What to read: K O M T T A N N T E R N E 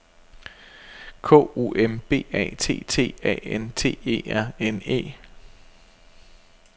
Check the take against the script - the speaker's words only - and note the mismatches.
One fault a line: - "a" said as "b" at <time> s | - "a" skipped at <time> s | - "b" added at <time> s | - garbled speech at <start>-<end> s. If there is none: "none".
- "B A" added at 2.1 s
- "N" skipped at 3.7 s